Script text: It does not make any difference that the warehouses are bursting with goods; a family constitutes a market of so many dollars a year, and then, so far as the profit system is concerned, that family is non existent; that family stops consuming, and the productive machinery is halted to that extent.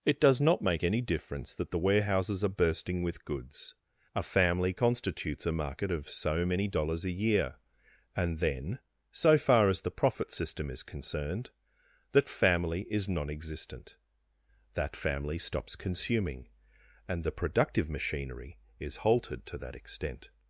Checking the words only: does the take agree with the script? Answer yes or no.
yes